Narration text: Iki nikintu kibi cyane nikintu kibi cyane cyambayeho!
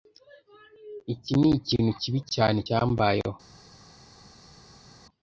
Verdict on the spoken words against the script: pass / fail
fail